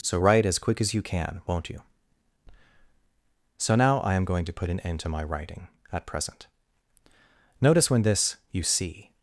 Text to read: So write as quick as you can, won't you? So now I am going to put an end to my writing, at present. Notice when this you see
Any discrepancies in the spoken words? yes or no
no